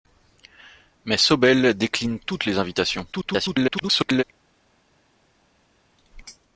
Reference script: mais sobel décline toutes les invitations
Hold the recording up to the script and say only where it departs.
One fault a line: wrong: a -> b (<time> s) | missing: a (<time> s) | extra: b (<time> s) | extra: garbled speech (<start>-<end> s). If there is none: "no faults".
extra: garbled speech (3.1-4.2 s)